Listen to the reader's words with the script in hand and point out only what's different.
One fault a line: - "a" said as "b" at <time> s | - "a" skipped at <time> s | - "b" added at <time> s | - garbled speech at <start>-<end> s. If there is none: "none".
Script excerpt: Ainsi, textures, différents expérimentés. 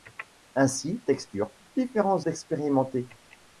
none